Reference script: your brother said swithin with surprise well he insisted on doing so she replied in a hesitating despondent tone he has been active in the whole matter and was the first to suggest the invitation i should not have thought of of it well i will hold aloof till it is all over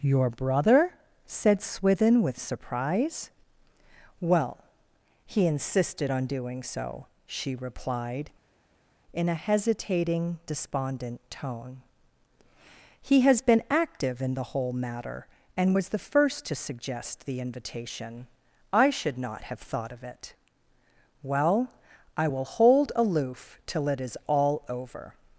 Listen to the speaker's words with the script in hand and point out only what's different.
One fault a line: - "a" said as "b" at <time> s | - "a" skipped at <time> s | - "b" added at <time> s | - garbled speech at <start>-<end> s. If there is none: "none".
- "of" skipped at 20.0 s